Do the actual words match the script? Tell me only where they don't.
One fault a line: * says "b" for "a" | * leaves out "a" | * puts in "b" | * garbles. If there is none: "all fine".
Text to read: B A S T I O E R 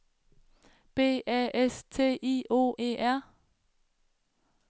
all fine